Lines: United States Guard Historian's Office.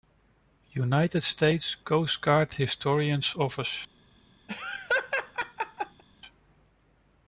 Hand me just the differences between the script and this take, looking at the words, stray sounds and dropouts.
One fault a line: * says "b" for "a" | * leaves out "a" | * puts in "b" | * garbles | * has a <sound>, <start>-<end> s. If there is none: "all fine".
* puts in "Coast"
* has a laugh, 4.5-6.0 s